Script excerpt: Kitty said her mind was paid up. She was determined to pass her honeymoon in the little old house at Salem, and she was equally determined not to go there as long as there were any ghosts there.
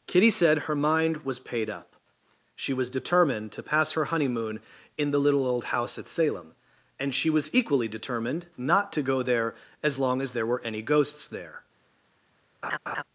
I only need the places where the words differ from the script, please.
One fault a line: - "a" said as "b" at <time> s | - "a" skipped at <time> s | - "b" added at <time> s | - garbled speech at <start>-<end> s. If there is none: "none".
none